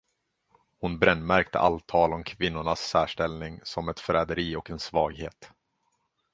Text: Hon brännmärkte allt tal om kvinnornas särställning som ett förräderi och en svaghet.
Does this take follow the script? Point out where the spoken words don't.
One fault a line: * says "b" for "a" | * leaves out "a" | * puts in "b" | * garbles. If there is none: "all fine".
all fine